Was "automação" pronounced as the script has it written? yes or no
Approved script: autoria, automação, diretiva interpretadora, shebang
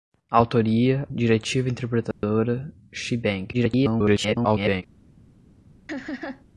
no